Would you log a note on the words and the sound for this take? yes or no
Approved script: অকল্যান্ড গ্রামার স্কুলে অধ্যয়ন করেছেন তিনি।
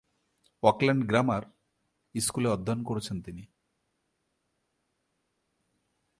no